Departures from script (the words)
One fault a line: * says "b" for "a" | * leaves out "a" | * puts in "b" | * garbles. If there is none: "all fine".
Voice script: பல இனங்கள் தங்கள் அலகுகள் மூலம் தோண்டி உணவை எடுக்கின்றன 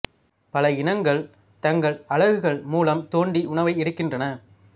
all fine